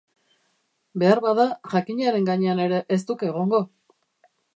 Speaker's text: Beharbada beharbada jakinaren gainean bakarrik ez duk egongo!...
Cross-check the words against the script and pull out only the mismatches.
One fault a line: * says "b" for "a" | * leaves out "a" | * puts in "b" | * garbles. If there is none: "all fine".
* leaves out "beharbada"
* says "ere" for "bakarrik"